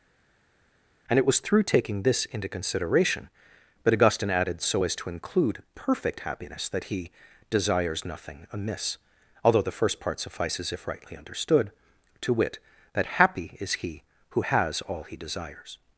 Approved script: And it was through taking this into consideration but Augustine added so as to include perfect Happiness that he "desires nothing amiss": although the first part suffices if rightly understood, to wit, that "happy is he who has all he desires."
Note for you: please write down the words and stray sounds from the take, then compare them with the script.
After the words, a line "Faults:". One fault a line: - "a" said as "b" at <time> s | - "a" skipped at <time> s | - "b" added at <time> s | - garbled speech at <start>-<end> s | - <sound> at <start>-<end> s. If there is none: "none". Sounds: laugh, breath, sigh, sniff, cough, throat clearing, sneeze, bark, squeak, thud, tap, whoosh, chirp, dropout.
And it was through taking this into consideration but Augustine added so as to include perfect Happiness that he "desires nothing amiss": although the first part suffices if rightly understood, to wit, that "happy is he who has all he desires."
Faults:
none